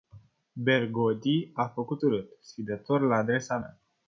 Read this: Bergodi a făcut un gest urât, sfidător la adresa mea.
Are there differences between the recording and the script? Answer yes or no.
yes